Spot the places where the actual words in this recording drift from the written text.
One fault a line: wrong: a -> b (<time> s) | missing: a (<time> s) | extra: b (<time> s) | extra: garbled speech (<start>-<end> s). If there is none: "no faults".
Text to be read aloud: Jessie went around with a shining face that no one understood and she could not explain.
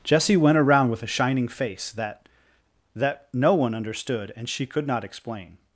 extra: that (2.9 s)